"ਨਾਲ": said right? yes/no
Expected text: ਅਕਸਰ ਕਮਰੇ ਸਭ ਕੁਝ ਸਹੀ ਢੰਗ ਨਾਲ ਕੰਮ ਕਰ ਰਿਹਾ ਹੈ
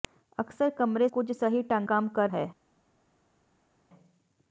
no